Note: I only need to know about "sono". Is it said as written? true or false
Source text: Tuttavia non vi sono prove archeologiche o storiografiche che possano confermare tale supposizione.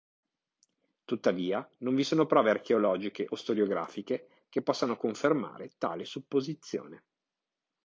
true